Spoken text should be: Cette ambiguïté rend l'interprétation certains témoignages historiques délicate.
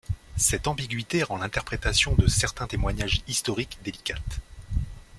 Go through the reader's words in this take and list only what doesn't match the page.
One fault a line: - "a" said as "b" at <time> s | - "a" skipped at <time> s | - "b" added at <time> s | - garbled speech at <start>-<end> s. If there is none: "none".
- "de" added at 2.1 s